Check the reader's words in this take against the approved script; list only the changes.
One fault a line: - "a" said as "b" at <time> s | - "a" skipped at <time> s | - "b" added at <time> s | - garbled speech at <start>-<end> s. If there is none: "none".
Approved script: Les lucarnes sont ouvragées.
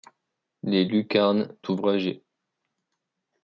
- "sont" skipped at 1.6 s